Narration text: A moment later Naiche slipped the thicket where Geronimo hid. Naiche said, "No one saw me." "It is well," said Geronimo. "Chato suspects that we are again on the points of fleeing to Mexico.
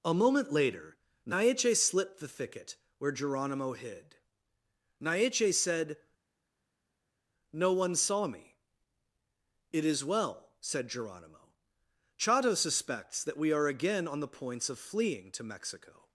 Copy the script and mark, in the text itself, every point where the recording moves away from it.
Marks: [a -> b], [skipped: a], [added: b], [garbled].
A moment later Naiche slipped the thicket where Geronimo hid. Naiche said, "No one saw me." "It is well," said Geronimo. "Chato suspects that we are again on the points of fleeing to Mexico.